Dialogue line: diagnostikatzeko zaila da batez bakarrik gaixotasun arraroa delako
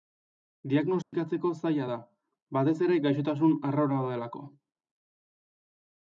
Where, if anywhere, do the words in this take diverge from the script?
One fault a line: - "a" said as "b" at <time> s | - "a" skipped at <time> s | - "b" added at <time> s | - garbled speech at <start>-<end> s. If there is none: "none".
- "bakarrik" said as "ere" at 2.9 s